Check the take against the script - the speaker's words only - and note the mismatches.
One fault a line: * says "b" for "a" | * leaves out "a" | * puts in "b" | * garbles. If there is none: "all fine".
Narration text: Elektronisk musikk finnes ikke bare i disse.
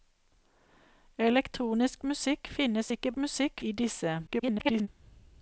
* says "musikk" for "bare"
* garbles